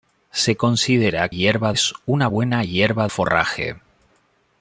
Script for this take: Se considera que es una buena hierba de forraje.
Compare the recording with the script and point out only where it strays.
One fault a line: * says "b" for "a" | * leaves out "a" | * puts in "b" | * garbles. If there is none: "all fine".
* says "hierba" for "que"
* leaves out "de"